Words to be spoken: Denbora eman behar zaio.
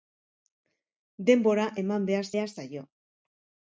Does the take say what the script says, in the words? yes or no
no